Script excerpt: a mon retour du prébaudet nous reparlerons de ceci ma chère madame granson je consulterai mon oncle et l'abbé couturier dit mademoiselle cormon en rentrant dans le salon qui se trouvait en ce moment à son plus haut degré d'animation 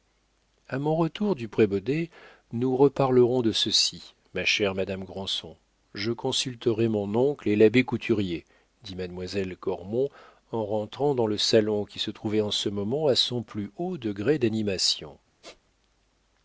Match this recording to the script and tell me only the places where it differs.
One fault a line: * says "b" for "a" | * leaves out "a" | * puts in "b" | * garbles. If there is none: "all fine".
all fine